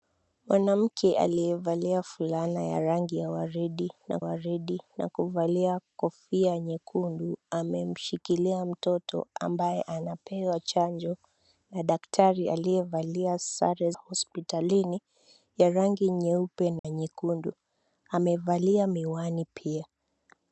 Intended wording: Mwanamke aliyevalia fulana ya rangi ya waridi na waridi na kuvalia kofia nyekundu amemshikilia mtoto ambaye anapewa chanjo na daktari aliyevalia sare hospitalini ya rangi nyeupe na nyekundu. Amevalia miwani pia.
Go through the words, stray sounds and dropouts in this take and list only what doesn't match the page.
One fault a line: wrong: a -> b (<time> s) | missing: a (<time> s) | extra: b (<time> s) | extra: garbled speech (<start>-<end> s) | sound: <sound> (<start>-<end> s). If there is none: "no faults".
sound: dropout (16.8-16.8 s)